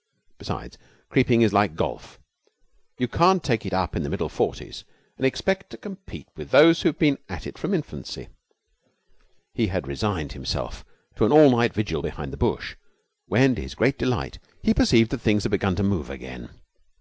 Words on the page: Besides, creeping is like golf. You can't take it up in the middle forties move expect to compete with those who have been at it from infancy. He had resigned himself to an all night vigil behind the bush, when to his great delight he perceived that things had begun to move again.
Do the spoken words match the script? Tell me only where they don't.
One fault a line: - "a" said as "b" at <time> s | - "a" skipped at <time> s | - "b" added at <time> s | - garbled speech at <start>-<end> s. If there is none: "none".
- "move" said as "and" at 5.2 s